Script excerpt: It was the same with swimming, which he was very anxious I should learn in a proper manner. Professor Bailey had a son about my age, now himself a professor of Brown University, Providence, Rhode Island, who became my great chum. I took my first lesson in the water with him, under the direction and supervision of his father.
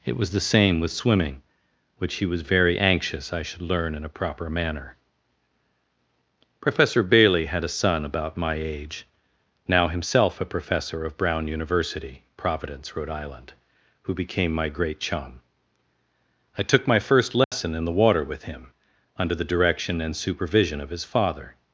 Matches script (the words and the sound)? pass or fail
fail